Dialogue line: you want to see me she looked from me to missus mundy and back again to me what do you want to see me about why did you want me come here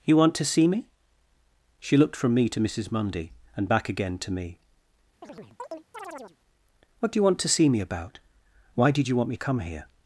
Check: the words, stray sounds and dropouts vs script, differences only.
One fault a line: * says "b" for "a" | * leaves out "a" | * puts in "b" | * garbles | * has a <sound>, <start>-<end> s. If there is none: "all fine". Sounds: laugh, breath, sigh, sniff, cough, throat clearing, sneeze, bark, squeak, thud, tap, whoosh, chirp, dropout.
* has a chirp, 5.2-6.4 s